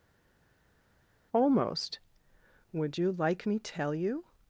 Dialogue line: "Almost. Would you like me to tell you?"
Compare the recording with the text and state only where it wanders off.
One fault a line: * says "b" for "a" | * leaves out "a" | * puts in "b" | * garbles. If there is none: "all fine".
* leaves out "to"